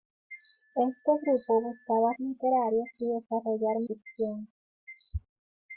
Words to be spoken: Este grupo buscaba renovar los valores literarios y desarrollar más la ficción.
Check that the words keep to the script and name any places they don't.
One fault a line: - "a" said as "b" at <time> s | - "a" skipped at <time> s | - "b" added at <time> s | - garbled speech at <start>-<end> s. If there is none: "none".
- "renovar los valores" skipped at 2.1 s
- "más la" skipped at 3.8 s